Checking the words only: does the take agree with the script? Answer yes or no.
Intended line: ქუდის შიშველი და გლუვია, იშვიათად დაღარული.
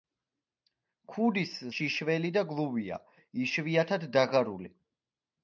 yes